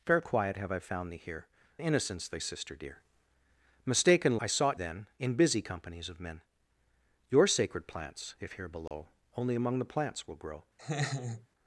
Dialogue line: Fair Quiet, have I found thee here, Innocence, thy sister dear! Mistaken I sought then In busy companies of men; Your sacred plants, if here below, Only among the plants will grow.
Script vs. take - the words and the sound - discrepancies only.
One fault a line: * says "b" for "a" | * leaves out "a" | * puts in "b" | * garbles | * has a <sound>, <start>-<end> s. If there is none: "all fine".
* has a dropout, 8.9-8.9 s
* has a laugh, 10.8-11.5 s